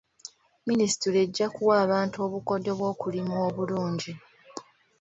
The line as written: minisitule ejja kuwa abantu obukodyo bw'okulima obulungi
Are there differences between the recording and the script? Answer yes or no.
no